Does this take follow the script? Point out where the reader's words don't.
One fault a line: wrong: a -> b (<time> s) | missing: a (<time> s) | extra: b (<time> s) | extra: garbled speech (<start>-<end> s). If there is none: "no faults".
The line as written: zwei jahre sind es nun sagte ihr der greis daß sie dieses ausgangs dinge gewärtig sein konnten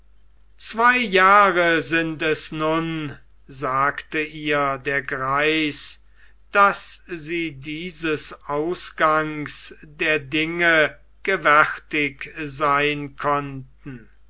extra: der (9.8 s)